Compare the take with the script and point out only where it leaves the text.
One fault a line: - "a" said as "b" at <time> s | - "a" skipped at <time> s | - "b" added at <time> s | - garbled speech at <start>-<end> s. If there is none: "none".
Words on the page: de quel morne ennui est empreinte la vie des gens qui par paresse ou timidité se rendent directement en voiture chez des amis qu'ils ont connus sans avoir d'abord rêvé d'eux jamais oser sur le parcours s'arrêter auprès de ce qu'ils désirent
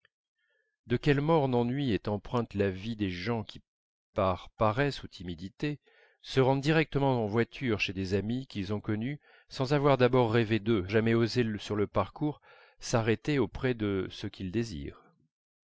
none